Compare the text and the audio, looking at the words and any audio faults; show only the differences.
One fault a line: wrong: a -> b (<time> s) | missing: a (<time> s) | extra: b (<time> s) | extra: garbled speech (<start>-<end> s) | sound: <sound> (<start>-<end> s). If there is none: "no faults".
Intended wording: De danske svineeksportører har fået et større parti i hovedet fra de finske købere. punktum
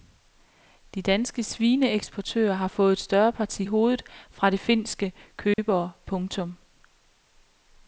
sound: dropout (5.5-5.6 s)